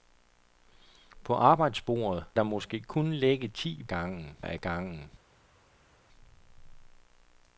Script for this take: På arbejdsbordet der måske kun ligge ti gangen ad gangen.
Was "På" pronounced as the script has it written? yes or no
yes